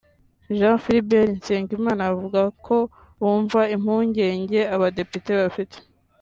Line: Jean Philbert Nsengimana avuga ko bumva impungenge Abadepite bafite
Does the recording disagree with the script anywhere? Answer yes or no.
no